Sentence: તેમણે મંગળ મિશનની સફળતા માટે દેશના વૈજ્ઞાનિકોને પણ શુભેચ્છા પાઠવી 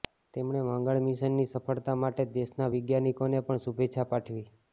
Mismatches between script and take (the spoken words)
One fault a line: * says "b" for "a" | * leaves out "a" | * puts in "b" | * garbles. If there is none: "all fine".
all fine